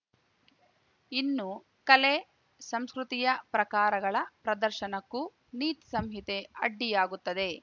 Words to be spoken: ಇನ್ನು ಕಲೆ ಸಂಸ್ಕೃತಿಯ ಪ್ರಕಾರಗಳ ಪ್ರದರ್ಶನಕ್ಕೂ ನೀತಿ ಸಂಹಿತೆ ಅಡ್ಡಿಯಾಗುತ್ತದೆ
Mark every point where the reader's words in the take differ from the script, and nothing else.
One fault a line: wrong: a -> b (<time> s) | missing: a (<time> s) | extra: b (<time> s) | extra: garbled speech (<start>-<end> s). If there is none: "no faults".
no faults